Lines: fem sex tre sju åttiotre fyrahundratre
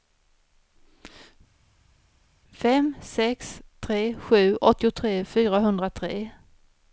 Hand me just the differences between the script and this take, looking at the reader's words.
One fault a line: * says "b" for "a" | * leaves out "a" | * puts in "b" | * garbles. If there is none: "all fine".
all fine